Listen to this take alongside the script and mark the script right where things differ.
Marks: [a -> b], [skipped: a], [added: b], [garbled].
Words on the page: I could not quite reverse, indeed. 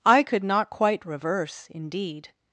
I could not quite reverse, indeed.